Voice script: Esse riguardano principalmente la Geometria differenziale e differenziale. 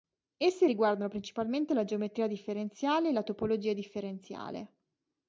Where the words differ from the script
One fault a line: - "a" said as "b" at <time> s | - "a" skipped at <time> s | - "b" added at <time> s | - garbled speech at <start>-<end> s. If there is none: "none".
- "la Topologia" added at 3.1 s